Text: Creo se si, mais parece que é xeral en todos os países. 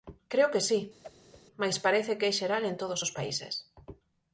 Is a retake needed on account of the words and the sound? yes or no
yes